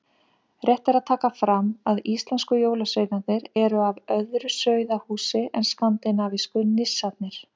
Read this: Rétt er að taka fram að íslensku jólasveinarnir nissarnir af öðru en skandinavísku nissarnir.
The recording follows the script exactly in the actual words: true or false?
false